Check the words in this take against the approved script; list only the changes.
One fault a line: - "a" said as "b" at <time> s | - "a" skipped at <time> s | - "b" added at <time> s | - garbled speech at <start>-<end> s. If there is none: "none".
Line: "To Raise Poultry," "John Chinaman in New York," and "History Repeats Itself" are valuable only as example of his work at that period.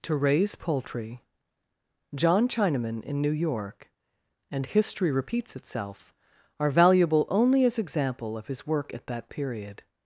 none